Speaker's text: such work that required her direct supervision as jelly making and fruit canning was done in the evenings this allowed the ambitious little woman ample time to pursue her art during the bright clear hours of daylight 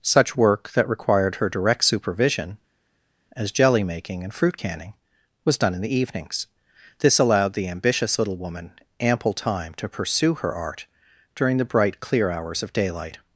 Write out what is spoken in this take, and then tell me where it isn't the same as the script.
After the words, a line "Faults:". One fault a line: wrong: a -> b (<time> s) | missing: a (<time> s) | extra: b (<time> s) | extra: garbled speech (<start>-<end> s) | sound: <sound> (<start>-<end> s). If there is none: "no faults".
such work that required her direct supervision as jelly making and fruit canning was done in the evenings this allowed the ambitious little woman ample time to pursue her art during the bright clear hours of daylight
Faults:
no faults